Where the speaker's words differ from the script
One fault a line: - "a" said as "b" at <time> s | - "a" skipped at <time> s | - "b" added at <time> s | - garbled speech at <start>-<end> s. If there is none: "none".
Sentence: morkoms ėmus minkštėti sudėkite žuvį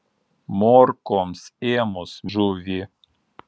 - "minkštėti sudėkite" skipped at 2.1 s